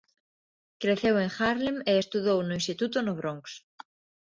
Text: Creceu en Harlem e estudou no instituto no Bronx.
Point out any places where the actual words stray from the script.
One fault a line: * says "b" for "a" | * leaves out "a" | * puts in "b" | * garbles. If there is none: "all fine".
all fine